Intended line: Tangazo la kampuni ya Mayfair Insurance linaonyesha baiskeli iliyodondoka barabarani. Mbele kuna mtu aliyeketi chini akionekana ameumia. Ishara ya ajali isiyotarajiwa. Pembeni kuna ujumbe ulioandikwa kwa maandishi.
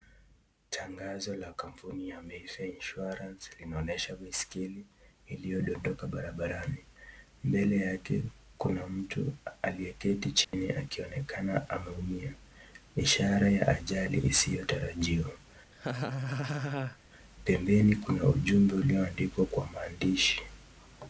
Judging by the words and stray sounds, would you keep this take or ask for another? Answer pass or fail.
fail